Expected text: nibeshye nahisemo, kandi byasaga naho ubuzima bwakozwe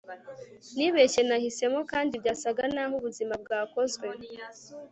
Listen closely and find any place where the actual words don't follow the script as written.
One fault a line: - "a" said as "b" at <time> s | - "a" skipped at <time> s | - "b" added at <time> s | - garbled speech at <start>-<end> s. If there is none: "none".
none